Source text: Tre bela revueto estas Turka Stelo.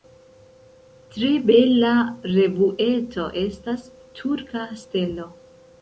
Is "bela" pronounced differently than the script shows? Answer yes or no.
no